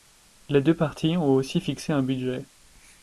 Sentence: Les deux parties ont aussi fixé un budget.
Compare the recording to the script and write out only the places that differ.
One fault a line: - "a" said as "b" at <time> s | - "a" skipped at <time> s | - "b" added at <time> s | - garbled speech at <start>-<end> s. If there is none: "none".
none